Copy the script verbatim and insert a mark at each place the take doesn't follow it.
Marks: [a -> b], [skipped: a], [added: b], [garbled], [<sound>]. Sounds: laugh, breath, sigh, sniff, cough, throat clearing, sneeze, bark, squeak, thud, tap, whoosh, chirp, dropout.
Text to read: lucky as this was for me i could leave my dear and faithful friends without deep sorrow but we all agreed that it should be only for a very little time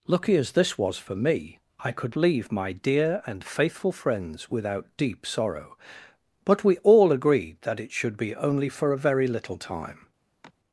lucky as this was for me i could leave my dear and faithful friends without deep sorrow but we all agreed that it should be only for a very little time [sigh]